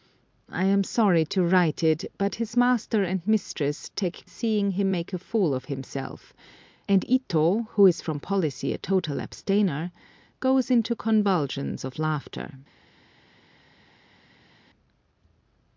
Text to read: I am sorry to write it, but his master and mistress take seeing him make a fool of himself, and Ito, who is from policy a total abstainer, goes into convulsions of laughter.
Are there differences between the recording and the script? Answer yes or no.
no